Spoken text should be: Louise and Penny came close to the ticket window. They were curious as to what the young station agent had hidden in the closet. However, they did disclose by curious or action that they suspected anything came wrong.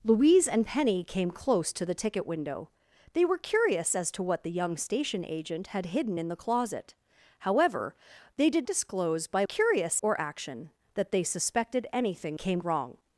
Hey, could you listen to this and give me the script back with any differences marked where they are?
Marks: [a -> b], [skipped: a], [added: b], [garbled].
Louise and Penny came close to the ticket window. They were curious as to what the young station agent had hidden in the closet. However, they did disclose by curious or action that they suspected anything came wrong.